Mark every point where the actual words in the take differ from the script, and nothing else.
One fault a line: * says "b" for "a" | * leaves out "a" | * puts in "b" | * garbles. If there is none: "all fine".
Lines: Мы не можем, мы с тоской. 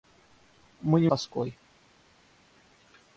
* leaves out "можем мы с"